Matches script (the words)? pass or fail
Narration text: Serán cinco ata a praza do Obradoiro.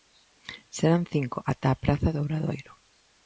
pass